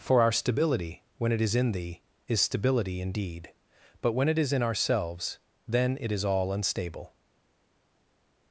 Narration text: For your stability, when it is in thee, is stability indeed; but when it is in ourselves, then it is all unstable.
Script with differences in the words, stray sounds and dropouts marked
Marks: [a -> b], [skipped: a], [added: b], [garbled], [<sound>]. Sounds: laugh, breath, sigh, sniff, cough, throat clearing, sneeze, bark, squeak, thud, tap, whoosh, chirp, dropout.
For [your -> our] stability, when it is in thee, is stability indeed; but when it is in ourselves, then it is all unstable.